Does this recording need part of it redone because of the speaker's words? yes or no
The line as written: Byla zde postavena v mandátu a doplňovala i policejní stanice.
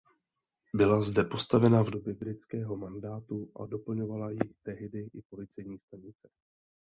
yes